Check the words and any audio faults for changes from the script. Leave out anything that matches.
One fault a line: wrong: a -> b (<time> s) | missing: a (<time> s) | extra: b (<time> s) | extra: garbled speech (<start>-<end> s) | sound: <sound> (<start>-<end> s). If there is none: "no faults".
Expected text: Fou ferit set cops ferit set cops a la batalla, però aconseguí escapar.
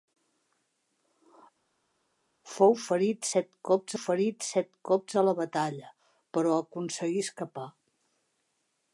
no faults